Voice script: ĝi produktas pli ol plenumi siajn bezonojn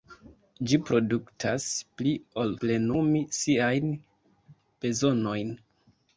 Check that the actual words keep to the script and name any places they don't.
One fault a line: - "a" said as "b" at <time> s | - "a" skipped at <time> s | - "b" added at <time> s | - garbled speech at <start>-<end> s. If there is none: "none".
none